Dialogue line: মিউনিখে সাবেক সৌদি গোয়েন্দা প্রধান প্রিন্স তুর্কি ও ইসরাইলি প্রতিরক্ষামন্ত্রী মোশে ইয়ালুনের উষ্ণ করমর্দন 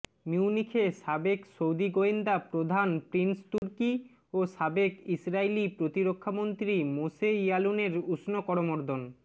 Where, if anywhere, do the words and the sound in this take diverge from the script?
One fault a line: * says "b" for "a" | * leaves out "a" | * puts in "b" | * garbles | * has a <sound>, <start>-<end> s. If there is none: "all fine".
* has a dropout, 3.6-3.6 s
* puts in "সাবেক"